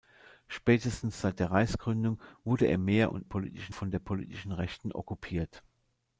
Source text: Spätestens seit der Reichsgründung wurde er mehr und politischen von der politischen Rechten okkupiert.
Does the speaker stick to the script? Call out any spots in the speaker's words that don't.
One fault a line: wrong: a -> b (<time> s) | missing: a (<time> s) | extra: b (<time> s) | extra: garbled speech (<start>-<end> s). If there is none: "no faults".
no faults